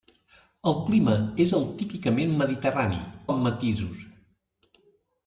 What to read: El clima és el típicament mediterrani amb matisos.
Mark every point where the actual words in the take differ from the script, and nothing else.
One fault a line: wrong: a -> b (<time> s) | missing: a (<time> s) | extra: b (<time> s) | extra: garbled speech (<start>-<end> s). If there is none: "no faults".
no faults